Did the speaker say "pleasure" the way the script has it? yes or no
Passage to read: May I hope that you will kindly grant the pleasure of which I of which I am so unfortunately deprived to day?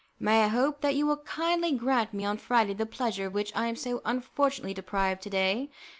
no